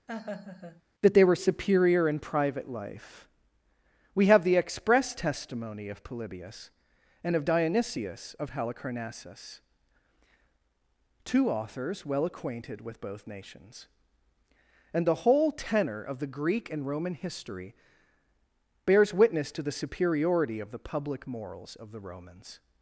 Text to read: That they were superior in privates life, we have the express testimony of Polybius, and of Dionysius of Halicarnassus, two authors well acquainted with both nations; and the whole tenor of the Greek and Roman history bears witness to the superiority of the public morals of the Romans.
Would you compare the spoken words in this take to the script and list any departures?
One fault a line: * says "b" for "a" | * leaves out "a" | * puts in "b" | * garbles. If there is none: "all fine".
* says "private" for "privates"